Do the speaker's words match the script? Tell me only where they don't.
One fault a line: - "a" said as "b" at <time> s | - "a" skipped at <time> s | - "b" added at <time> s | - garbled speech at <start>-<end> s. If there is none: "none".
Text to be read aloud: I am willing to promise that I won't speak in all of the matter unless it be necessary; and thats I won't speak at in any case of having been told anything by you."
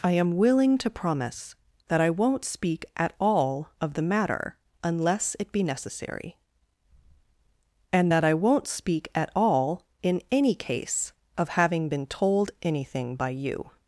- "in" said as "at" at 3.0 s
- "thats" said as "that" at 8.1 s
- "all" added at 9.3 s